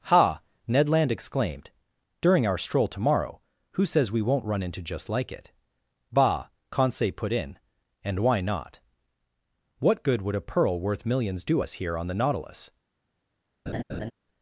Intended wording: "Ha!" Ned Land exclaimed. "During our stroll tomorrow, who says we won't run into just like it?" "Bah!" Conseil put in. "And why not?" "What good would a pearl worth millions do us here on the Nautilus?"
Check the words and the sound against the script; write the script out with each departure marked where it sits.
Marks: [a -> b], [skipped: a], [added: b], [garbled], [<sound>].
"Ha!" Ned Land exclaimed. "During our stroll tomorrow, who says we won't run into just like it?" "Bah!" Conseil put in. "And why not?" "What good would a pearl worth millions do us here on the Nautilus?" [laugh]